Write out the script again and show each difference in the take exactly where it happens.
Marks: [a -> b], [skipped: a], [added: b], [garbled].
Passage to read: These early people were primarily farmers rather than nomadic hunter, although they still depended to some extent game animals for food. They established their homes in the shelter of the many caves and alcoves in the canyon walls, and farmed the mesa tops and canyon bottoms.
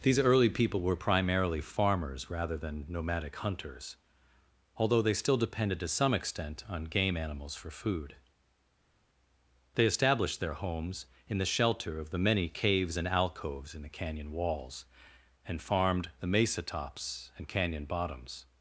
These early people were primarily farmers rather than nomadic [hunter, -> hunters] although they still depended to some extent [added: on] game animals for food. They established their homes in the shelter of the many caves and alcoves in the canyon walls, and farmed the mesa tops and canyon bottoms.